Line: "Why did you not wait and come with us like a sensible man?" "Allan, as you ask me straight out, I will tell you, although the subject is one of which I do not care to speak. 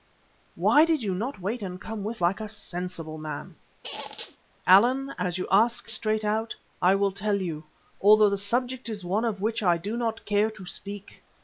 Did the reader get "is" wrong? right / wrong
right